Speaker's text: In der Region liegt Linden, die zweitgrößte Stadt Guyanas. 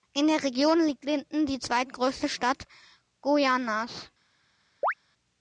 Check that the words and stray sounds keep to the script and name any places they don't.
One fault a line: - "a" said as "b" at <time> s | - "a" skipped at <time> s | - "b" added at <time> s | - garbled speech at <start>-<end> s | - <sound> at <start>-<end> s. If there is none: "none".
- chirp at 4.8-4.9 s